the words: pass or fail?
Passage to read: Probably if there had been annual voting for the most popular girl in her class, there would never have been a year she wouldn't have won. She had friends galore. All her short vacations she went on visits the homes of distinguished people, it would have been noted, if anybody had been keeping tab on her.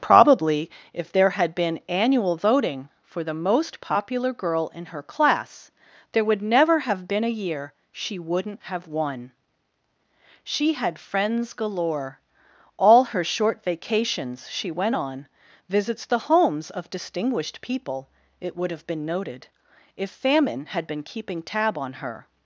fail